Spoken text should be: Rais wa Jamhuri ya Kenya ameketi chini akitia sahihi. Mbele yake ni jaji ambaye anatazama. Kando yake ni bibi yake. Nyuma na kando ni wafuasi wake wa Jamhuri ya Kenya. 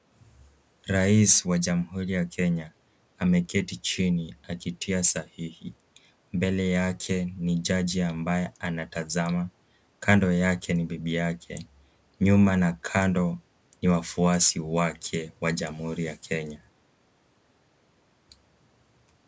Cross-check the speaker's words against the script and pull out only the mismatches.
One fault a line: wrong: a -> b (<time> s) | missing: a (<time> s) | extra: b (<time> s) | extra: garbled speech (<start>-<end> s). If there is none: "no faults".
no faults